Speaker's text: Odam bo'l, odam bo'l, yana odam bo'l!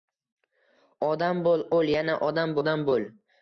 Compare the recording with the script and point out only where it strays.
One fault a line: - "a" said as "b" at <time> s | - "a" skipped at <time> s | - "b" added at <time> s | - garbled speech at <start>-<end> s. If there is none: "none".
- "odam" skipped at 1.7 s
- "odam" added at 2.6 s